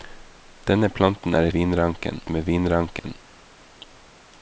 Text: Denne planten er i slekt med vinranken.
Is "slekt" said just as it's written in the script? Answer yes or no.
no